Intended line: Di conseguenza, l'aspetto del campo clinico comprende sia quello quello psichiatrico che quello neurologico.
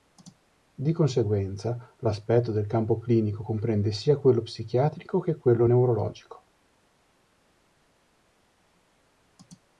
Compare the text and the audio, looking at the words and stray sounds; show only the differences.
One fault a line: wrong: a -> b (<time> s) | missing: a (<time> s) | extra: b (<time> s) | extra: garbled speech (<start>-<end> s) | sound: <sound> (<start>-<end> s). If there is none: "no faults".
missing: quello (4.4 s)